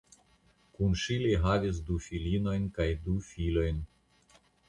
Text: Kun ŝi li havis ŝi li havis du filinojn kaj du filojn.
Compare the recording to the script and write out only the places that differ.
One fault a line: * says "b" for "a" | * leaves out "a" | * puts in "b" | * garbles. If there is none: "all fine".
* leaves out "ŝi li havis"